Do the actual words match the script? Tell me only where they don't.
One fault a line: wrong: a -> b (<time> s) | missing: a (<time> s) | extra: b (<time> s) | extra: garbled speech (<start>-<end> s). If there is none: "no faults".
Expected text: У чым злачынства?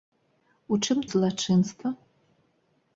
no faults